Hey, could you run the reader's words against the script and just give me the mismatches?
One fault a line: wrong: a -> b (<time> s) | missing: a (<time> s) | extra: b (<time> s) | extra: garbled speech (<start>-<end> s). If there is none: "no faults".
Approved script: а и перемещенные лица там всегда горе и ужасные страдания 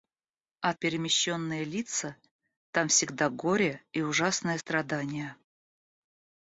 no faults